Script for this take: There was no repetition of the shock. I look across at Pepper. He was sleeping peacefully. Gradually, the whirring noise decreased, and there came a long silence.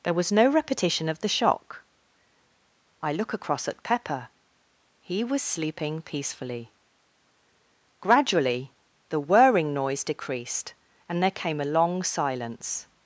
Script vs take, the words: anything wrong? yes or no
no